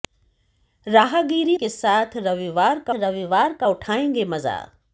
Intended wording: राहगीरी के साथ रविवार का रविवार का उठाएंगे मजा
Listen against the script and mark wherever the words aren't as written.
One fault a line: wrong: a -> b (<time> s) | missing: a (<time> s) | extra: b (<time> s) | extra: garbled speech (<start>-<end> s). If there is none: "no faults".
no faults